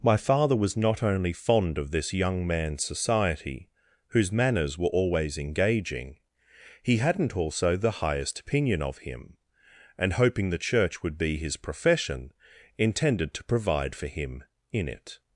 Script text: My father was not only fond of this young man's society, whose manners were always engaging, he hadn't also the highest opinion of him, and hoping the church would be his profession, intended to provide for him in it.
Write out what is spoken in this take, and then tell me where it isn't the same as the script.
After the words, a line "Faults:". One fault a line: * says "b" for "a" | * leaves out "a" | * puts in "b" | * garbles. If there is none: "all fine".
My father was not only fond of this young man's society, whose manners were always engaging, he hadn't also the highest opinion of him, and hoping the church would be his profession, intended to provide for him in it.
Faults:
all fine